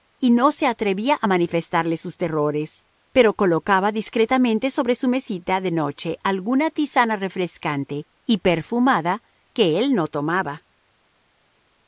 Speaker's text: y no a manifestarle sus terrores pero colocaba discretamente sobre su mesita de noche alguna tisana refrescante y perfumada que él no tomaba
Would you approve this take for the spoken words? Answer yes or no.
no